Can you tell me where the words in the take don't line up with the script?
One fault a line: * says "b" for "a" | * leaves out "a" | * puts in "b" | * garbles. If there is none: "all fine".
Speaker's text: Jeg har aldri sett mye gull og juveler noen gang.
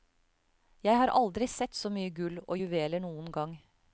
* puts in "så"